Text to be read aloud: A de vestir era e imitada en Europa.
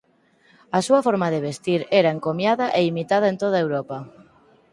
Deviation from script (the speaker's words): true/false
true